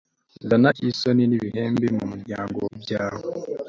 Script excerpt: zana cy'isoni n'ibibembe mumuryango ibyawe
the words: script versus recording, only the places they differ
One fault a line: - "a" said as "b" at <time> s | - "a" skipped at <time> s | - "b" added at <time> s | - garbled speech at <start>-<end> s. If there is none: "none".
none